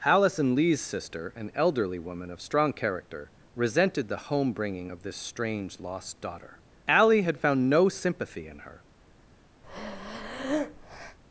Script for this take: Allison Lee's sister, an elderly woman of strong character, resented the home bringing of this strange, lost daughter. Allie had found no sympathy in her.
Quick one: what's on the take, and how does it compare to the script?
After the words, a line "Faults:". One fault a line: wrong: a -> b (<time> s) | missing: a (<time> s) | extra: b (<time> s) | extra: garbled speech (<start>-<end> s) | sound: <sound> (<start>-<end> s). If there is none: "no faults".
Allison Lee's sister, an elderly woman of strong character, resented the home bringing of this strange, lost daughter. Allie had found no sympathy in her.
Faults:
sound: breath (9.6-11.2 s)